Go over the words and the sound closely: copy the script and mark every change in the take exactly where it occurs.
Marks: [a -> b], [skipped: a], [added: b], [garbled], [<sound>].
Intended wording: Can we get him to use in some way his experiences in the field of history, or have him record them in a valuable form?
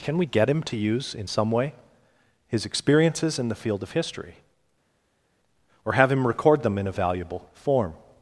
Can we get him to use in some way his experiences in the field of history, or have him record them in a valuable form?